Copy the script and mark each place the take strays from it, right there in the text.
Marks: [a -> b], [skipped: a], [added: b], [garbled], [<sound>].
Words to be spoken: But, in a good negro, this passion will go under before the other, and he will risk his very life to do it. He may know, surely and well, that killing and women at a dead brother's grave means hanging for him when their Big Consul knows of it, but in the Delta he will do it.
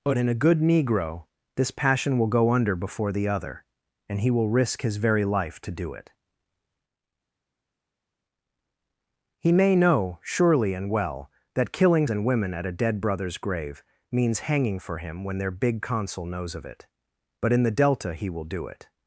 But, in a good negro, this passion will go under before the other, and he will risk his very life to do it. He may know, surely and well, that killing and women at a dead brother's grave means hanging for him when their Big Consul knows of it, but in the Delta he will do it.